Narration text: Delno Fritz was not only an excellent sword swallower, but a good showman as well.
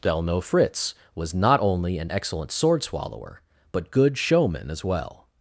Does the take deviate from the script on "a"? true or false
true